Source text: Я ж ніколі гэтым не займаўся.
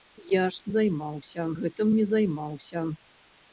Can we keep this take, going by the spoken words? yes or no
no